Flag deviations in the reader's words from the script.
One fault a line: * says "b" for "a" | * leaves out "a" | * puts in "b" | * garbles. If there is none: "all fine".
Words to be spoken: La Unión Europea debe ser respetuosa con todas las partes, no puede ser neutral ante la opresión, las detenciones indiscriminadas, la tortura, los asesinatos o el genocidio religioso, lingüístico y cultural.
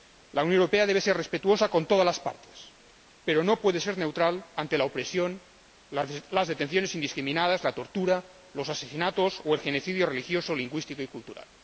* puts in "pero"